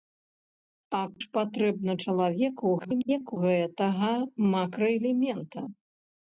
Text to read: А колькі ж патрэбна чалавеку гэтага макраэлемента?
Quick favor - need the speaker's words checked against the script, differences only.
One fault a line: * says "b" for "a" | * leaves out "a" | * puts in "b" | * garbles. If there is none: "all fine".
* leaves out "колькі"
* garbles